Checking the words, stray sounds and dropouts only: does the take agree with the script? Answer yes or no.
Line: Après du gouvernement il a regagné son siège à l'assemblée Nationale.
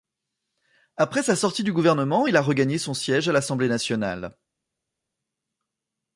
no